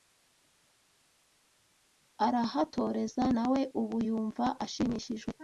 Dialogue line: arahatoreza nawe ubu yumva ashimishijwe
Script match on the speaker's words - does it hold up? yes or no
yes